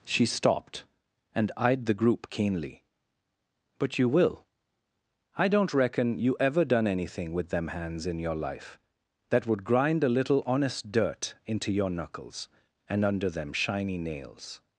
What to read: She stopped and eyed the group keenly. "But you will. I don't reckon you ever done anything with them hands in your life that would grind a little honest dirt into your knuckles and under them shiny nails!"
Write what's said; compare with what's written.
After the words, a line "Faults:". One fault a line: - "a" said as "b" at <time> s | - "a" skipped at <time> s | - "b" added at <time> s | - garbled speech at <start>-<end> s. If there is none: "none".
She stopped and eyed the group keenly. "But you will. I don't reckon you ever done anything with them hands in your life that would grind a little honest dirt into your knuckles and under them shiny nails!"
Faults:
none